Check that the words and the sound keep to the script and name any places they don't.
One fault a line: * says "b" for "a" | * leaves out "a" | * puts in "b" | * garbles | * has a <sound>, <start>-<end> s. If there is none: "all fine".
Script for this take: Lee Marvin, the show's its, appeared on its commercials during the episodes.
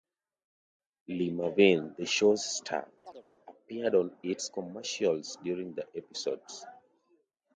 * says "star" for "its"
* has a chirp, 3.0-3.3 s